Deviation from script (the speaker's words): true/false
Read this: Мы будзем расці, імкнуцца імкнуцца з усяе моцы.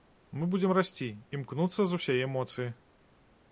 true